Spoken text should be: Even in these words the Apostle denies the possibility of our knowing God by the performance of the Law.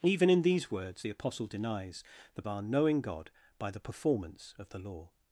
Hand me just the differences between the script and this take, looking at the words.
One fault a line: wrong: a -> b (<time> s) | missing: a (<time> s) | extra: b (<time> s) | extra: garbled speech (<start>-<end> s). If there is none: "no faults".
missing: possibility of (2.4 s)